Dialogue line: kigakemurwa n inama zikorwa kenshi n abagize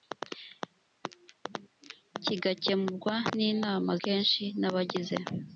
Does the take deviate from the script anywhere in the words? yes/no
yes